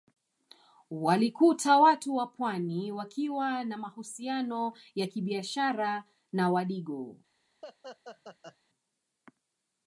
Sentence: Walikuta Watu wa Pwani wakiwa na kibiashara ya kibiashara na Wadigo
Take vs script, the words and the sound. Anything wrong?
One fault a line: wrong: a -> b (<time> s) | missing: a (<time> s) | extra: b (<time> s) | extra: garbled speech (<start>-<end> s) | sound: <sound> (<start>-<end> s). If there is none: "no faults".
wrong: kibiashara -> mahusiano (3.8 s)
sound: laugh (7.6-8.6 s)